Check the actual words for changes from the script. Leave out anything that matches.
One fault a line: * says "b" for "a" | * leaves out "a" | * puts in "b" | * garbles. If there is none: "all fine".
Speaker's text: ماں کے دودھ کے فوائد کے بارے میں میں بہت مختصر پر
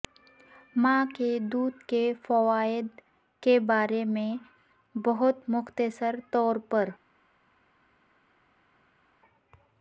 * leaves out "میں"
* puts in "طور"